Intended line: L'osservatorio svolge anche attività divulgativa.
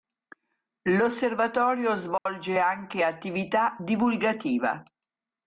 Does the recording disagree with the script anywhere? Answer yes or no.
no